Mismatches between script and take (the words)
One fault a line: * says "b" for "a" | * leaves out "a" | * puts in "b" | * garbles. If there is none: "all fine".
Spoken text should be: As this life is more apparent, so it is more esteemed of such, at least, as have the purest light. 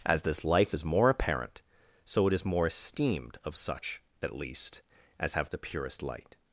all fine